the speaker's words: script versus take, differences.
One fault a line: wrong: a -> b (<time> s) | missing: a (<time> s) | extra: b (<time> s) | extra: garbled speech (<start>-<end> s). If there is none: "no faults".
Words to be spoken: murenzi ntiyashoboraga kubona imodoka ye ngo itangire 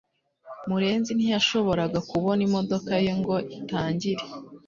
no faults